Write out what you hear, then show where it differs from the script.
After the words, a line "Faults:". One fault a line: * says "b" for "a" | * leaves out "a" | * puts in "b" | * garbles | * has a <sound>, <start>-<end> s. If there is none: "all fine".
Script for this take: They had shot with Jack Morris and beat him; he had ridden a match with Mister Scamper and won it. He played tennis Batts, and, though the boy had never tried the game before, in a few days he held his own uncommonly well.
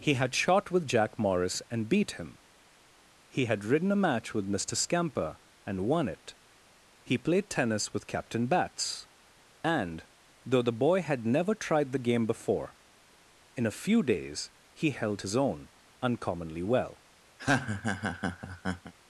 He had shot with Jack Morris and beat him; he had ridden a match with Mister Scamper and won it. He played tennis with Captain Batts, and, though the boy had never tried the game before, in a few days he held his own uncommonly well.
Faults:
* says "He" for "They"
* puts in "with Captain"
* has a laugh, 17.4-18.9 s